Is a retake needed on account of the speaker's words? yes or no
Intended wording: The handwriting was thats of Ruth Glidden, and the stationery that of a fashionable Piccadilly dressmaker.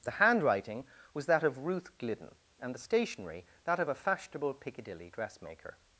yes